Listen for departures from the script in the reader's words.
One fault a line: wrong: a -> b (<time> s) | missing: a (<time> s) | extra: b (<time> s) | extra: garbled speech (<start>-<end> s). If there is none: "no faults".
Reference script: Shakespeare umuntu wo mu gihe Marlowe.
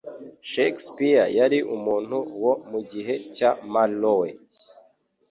extra: yari (1.4 s)
extra: cya (3.4 s)